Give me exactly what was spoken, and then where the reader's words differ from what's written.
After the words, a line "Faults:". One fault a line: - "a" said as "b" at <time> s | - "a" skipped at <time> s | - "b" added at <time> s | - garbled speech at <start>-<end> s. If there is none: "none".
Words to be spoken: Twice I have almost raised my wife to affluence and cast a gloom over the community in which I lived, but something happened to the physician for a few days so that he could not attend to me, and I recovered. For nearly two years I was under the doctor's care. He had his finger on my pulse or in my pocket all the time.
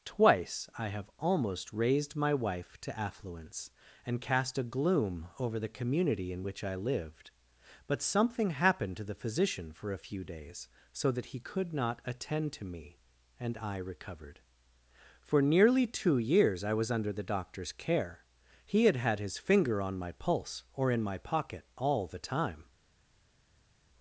Twice I have almost raised my wife to affluence and cast a gloom over the community in which I lived, but something happened to the physician for a few days so that he could not attend to me, and I recovered. For nearly two years I was under the doctor's care. He had had his finger on my pulse or in my pocket all the time.
Faults:
- "had" added at 19.0 s